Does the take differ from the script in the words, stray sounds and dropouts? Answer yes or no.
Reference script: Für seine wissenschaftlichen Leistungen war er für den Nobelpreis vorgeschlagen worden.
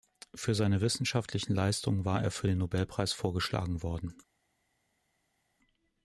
no